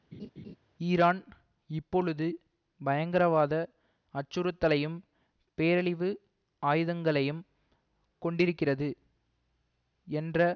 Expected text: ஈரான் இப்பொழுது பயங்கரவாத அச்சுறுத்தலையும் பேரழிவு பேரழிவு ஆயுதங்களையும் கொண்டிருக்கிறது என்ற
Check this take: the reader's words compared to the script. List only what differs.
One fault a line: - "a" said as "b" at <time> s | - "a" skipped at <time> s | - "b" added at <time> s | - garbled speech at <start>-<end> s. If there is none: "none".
- "பேரழிவு" skipped at 6.1 s